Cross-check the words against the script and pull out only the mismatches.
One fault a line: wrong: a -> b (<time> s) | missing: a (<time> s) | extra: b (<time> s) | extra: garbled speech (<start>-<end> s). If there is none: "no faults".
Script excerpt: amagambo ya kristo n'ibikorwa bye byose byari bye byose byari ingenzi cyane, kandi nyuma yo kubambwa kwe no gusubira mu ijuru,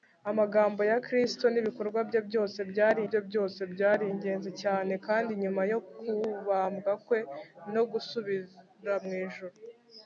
no faults